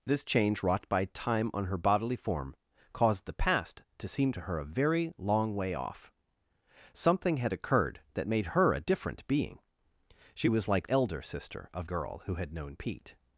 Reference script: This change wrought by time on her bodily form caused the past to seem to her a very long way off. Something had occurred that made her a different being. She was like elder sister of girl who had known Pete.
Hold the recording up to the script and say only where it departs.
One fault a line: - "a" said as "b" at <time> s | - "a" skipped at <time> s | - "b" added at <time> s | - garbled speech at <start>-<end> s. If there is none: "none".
none